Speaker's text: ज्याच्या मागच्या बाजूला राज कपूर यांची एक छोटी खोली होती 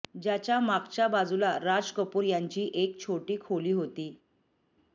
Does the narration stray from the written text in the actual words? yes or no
no